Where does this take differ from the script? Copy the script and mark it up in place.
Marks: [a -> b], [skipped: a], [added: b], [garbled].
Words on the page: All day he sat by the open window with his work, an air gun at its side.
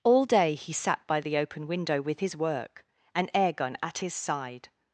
All day he sat by the open window with his work, an air gun at [its -> his] side.